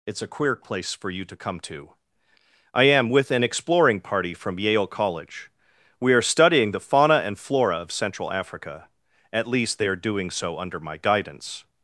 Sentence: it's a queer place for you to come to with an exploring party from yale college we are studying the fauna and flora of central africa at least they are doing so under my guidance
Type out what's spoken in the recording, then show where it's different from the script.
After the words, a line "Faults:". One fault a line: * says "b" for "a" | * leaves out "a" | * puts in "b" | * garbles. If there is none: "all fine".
it's a queer place for you to come to i am with an exploring party from yale college we are studying the fauna and flora of central africa at least they are doing so under my guidance
Faults:
* puts in "i am"